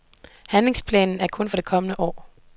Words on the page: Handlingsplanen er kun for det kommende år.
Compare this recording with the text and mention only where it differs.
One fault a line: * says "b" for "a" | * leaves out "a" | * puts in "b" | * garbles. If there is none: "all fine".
all fine